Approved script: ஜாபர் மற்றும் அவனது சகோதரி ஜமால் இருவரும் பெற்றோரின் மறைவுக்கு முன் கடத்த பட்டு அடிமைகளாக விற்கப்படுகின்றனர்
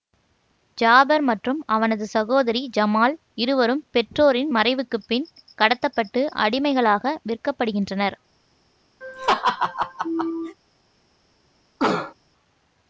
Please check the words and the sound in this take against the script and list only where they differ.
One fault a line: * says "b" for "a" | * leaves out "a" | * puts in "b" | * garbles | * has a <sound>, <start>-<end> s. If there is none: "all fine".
* says "பின்" for "முன்"
* has a laugh, 9.0-10.6 s
* has a cough, 11.8-12.1 s